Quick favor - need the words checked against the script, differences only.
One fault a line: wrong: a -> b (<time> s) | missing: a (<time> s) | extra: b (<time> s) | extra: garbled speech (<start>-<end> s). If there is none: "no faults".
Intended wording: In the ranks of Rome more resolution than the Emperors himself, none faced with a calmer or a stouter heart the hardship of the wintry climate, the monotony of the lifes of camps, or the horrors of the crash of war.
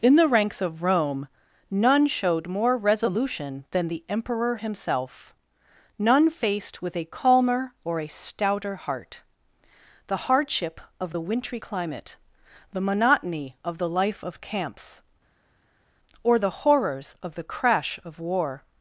extra: none showed (1.7 s)
wrong: Emperors -> Emperor (4.1 s)
wrong: lifes -> life (13.9 s)